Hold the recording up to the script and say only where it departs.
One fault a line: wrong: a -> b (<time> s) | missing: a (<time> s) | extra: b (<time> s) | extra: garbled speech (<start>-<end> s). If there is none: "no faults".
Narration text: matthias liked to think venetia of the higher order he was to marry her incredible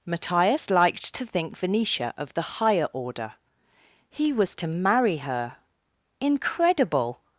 no faults